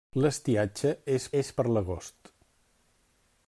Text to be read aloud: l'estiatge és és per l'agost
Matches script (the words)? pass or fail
pass